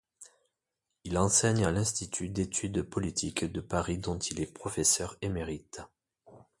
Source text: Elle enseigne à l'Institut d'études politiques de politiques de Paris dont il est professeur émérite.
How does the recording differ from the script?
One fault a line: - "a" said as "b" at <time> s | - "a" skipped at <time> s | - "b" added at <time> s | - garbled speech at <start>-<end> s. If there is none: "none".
- "Elle" said as "Il" at 1.0 s
- "politiques de" skipped at 3.6 s